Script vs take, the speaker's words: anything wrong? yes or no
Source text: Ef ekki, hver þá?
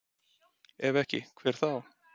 no